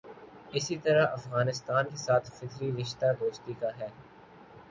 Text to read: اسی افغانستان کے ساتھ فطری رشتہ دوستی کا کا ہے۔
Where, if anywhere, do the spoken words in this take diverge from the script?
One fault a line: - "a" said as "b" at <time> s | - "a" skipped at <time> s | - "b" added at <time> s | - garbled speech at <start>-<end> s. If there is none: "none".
- "طرح" added at 0.8 s
- "کا" skipped at 3.7 s